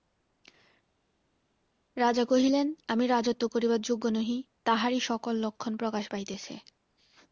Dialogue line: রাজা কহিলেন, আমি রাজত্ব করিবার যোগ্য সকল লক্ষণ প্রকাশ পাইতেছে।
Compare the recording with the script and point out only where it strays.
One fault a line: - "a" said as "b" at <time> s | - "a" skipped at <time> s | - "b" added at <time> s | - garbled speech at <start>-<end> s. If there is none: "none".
- "নহি তাহারই" added at 4.1 s